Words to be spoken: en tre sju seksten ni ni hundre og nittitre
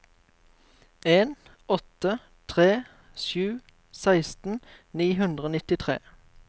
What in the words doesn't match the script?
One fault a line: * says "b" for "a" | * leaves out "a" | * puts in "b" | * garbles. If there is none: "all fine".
* puts in "åtte"
* leaves out "ni"